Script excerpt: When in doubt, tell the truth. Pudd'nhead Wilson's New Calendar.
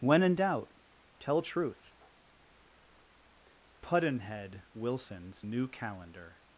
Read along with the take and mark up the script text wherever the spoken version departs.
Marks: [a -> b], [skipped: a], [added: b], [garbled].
When in doubt, tell [skipped: the] truth. Pudd'nhead Wilson's New Calendar.